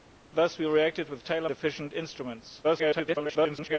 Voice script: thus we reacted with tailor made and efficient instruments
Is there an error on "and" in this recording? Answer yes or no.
yes